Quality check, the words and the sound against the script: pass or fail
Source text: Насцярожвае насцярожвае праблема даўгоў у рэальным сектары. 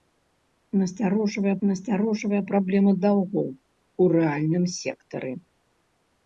pass